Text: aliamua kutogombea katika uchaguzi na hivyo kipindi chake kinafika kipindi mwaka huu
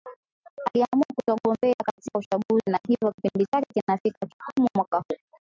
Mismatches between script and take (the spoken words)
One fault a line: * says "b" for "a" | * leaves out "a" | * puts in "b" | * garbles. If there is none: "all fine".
* says "kikomo" for "kipindi"